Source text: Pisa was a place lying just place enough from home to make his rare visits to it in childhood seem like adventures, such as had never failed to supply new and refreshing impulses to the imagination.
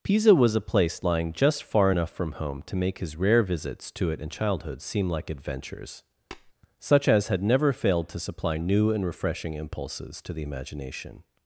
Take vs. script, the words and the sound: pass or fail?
fail